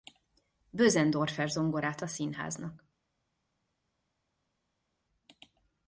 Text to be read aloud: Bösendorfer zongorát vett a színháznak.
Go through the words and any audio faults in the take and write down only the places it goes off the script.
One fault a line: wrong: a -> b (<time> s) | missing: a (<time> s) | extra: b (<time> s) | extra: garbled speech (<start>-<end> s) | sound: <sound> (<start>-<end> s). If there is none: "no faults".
missing: vett (2.0 s)